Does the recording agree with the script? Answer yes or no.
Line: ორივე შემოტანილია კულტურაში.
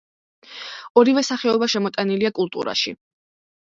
no